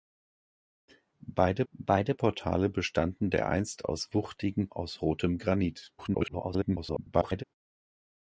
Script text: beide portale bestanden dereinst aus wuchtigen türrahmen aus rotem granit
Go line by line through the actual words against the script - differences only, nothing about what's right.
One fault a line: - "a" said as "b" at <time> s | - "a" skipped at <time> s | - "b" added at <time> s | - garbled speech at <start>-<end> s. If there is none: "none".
- "beide" added at 1.7 s
- "türrahmen" skipped at 4.7 s
- garbled speech at 6.0-7.4 s